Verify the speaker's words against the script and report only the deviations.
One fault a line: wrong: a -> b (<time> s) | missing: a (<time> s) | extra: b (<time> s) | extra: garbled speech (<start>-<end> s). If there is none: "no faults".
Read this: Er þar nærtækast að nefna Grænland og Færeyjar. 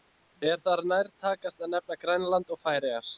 no faults